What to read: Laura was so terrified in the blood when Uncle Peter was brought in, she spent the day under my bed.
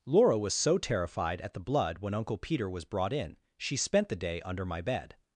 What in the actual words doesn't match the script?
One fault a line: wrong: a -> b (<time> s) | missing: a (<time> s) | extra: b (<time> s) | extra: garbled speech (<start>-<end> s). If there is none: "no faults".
wrong: in -> at (1.4 s)